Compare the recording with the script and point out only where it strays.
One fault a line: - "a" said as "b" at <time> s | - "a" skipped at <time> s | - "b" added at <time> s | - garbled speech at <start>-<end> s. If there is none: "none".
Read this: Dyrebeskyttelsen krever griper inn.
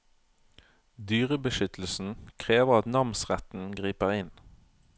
- "at namsretten" added at 2.8 s